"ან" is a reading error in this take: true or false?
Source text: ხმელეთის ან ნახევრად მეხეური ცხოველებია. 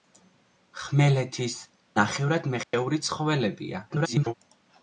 true